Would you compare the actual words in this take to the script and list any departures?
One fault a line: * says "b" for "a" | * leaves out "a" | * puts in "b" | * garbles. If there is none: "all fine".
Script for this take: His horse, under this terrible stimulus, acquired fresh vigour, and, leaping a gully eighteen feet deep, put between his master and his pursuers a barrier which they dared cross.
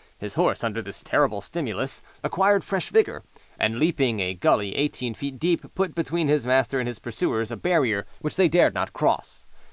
* puts in "not"